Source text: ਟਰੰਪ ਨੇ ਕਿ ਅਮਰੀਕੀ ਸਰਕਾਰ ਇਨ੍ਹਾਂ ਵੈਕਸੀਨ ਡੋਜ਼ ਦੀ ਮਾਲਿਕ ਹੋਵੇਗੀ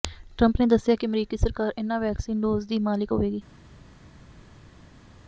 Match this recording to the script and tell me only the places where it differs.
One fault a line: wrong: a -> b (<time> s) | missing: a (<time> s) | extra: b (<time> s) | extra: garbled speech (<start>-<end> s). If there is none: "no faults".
extra: ਦੱਸਿਆ (0.7 s)